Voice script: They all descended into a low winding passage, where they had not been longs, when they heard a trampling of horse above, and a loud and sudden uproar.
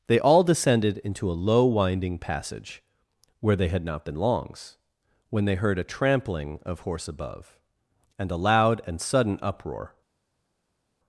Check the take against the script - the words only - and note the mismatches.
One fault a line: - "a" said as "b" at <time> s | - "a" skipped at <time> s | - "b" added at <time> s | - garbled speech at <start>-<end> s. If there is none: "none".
none